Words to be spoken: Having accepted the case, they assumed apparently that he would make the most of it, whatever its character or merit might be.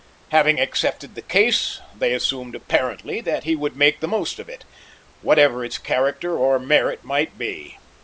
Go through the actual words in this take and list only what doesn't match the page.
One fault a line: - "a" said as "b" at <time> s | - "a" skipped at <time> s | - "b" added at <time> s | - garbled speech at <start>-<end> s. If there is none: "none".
none